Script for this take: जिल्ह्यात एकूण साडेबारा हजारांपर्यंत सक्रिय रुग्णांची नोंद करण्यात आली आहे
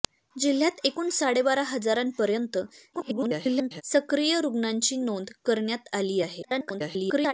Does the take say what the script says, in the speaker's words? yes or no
no